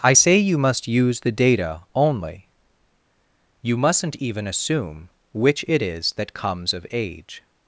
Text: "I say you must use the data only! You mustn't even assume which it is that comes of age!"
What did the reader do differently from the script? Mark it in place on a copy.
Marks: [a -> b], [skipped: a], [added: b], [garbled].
"I say you must use the data only! You mustn't even assume which it is that comes of age!"